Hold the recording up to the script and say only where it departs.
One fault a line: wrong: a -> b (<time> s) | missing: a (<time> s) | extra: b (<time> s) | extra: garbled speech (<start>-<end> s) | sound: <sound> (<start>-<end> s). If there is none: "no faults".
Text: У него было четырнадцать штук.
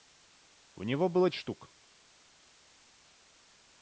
missing: четырнадцать (1.3 s)